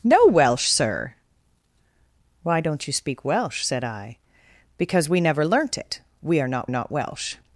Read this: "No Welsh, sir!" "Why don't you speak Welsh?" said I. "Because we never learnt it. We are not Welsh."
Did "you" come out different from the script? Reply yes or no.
no